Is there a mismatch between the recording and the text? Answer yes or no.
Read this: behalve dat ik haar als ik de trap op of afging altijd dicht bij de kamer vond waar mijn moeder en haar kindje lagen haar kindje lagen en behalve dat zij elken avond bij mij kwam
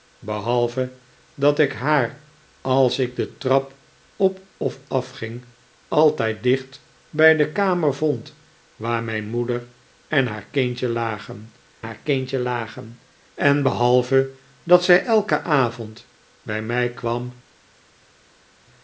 no